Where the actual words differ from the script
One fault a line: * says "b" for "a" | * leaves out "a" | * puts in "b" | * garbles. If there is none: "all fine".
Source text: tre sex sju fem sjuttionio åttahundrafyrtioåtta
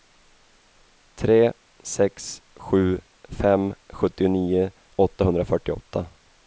all fine